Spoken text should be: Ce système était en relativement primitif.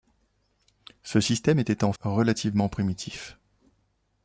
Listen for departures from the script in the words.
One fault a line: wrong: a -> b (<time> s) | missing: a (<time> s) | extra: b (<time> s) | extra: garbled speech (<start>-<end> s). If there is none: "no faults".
no faults